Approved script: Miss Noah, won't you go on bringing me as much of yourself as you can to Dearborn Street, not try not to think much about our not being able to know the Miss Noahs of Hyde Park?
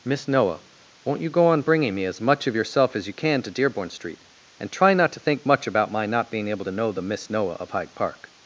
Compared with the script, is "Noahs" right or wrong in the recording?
wrong